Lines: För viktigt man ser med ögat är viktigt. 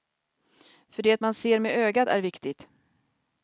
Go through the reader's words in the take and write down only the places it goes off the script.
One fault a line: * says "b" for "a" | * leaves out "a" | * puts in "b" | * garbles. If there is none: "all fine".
* says "det" for "viktigt"